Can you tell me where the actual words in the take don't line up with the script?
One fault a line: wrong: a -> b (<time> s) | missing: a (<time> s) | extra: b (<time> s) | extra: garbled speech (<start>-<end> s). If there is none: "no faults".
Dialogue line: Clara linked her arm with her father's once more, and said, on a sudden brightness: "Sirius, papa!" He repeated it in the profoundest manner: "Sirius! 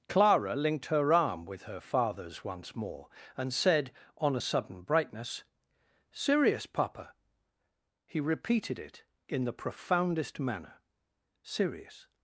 no faults